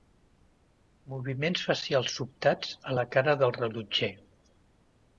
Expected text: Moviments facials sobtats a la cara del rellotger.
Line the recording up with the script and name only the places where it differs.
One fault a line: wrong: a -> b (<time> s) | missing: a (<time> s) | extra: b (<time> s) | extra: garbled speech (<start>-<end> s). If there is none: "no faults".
no faults